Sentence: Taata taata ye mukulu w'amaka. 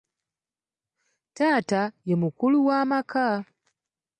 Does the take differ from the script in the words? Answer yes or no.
yes